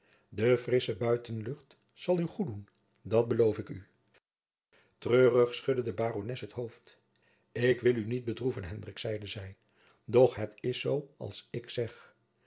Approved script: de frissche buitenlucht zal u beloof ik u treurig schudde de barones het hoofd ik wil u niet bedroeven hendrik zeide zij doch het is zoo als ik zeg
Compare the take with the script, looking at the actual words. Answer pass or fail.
fail